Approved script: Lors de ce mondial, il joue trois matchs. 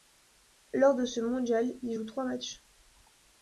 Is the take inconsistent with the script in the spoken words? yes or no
no